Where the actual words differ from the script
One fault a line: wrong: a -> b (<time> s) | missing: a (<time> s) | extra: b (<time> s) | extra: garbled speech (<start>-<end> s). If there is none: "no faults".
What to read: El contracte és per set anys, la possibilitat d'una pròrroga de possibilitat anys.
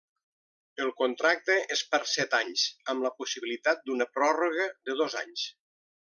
extra: amb (2.9 s)
wrong: possibilitat -> dos (5.0 s)